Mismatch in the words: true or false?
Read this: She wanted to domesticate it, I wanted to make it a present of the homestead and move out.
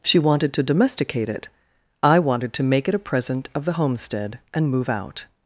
false